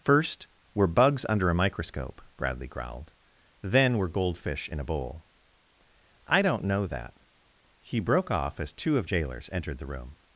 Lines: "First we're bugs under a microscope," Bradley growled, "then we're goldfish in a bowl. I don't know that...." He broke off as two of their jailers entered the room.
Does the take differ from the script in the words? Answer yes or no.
yes